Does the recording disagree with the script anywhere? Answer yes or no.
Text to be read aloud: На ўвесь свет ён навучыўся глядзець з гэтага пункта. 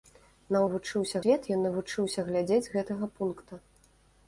yes